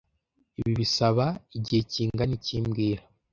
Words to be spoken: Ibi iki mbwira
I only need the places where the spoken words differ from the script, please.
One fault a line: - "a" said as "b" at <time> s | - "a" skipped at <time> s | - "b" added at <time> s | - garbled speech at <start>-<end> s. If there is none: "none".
- "bisaba igihe kingana" added at 0.8 s